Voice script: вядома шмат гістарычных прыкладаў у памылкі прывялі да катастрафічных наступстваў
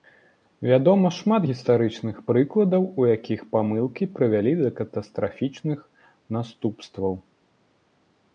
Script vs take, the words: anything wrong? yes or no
yes